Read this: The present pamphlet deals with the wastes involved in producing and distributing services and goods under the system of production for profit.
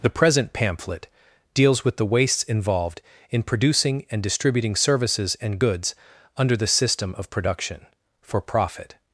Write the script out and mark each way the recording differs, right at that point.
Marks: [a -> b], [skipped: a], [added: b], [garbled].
The present pamphlet deals with the wastes involved in producing and distributing services and goods under the system of production for profit.